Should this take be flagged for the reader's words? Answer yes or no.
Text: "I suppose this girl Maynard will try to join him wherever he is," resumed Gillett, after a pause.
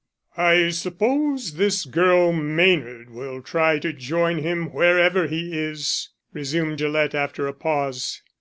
no